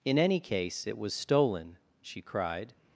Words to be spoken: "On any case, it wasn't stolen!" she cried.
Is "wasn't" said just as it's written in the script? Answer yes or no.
no